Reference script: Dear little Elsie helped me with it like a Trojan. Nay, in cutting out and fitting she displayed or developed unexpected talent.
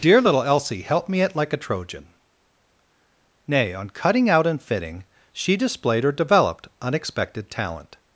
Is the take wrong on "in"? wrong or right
wrong